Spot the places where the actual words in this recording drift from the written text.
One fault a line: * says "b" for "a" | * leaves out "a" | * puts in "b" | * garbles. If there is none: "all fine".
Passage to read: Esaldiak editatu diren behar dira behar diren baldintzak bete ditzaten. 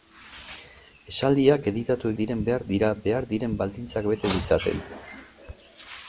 all fine